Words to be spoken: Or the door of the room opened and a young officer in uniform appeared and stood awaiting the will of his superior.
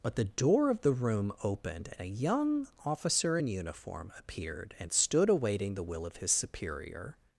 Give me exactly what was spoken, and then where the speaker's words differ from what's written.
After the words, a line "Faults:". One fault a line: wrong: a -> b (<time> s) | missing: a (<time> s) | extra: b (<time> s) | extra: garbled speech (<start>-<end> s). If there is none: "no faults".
But the door of the room opened and a young officer in uniform appeared and stood awaiting the will of his superior.
Faults:
wrong: Or -> But (0.0 s)